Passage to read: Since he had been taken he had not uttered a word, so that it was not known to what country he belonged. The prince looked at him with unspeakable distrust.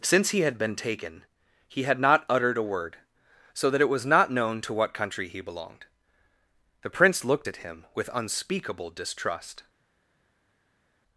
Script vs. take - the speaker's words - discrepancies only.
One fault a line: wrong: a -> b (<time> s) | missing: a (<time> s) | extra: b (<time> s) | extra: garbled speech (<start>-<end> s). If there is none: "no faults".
no faults